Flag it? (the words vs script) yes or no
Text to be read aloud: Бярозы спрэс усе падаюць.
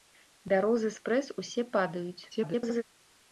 yes